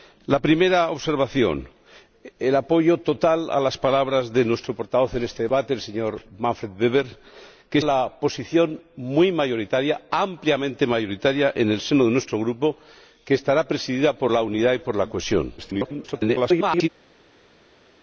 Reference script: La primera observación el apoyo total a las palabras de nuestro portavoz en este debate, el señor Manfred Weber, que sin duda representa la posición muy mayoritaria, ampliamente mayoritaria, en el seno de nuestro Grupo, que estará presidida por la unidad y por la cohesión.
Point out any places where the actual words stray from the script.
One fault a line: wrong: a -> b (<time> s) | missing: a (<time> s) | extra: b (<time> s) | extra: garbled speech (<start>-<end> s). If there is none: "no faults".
missing: sin duda representa (7.8 s)
extra: garbled speech (15.6-16.9 s)